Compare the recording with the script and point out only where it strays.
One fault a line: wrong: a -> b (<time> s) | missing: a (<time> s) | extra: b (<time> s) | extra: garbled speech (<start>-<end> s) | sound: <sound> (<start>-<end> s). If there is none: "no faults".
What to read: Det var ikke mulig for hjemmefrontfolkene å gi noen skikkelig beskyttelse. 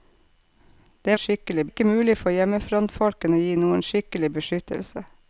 wrong: var -> skikkelig (1.2 s)